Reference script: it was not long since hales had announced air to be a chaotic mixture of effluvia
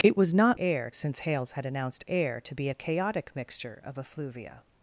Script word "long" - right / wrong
wrong